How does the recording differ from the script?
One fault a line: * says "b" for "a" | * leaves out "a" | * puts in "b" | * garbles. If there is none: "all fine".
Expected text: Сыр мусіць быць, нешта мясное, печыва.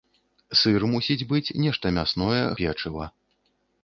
all fine